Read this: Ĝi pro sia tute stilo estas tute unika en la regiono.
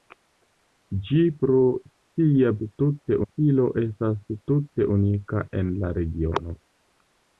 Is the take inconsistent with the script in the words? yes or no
no